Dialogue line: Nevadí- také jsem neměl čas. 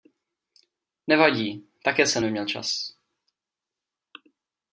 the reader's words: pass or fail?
pass